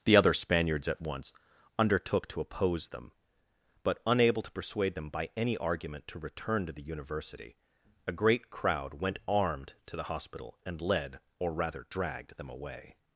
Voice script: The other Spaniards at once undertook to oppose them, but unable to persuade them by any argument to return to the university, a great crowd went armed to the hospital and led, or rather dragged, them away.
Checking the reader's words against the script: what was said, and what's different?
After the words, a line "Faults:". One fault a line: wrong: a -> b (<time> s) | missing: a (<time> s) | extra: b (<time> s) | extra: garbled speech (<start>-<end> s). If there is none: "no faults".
The other Spaniards at once undertook to oppose them, but unable to persuade them by any argument to return to the university, a great crowd went armed to the hospital and led, or rather dragged, them away.
Faults:
no faults